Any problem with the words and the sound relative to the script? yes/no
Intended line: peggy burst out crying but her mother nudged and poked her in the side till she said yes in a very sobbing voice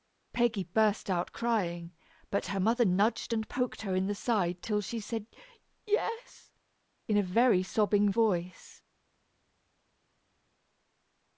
no